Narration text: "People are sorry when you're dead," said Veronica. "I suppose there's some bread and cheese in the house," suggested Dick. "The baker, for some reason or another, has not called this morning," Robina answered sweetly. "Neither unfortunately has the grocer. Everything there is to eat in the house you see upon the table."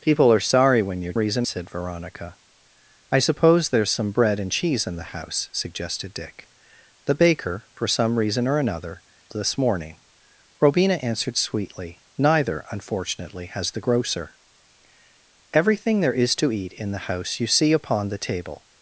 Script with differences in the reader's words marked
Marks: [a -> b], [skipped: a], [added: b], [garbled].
"People are sorry when you're [dead," -> reason] said Veronica. "I suppose there's some bread and cheese in the house," suggested Dick. "The baker, for some reason or another, [skipped: has not called] this morning," Robina answered sweetly. "Neither unfortunately has the grocer. Everything there is to eat in the house you see upon the table."